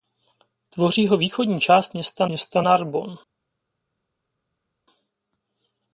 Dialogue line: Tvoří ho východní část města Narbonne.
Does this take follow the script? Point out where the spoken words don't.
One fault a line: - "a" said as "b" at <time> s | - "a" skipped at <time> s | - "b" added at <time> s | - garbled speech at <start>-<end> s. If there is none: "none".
- "města" added at 2.3 s